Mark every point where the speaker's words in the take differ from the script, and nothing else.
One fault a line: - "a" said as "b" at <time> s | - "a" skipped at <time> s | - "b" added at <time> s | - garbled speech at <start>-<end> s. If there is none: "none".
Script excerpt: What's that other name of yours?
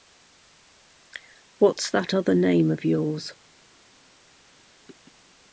none